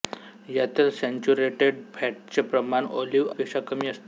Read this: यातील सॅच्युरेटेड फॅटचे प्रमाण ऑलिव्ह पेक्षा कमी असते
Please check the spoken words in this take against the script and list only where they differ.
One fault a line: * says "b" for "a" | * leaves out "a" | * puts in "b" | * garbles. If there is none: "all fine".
all fine